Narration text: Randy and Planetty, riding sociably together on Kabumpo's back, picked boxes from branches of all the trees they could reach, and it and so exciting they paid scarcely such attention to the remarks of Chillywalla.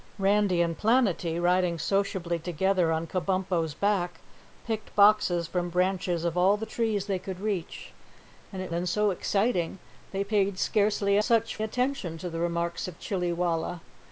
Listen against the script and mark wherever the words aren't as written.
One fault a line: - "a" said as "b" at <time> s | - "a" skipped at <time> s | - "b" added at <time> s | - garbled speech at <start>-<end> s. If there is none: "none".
none